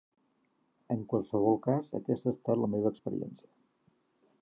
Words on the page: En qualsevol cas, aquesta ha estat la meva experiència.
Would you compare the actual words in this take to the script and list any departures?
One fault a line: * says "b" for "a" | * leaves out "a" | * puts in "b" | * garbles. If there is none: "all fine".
all fine